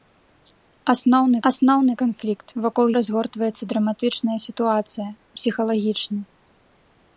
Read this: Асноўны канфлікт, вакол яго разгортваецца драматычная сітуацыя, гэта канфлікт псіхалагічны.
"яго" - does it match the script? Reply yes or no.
no